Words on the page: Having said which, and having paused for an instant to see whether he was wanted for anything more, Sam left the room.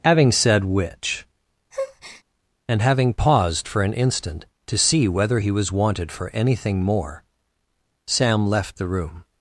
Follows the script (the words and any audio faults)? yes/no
no